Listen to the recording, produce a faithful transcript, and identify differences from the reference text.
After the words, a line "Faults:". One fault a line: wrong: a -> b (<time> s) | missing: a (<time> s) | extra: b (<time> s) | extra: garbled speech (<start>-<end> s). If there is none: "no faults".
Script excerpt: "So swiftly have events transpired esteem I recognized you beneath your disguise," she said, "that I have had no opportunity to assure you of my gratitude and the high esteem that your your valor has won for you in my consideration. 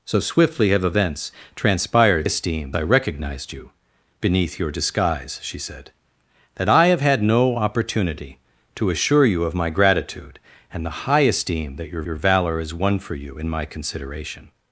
"So swiftly have events transpired esteem I recognized you beneath your disguise," she said, "that I have had no opportunity to assure you of my gratitude and the high esteem that your your valor has won for you in my consideration.
Faults:
no faults